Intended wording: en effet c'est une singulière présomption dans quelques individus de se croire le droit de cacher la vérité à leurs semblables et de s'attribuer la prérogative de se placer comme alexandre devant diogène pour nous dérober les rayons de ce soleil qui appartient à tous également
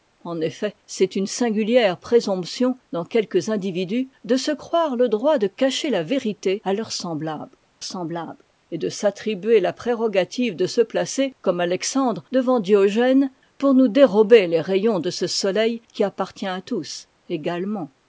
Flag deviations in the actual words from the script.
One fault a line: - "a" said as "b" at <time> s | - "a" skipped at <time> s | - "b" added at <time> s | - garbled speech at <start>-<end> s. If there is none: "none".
- "semblables" added at 7.8 s